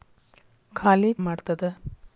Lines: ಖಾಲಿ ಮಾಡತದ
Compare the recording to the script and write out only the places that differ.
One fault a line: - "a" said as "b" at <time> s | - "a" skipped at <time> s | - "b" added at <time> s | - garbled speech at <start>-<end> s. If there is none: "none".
none